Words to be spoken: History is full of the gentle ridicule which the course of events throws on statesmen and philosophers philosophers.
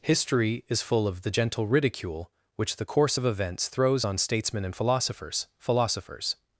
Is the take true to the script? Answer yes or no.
yes